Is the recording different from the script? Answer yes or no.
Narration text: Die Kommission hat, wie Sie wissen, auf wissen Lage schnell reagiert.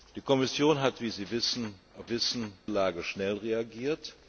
no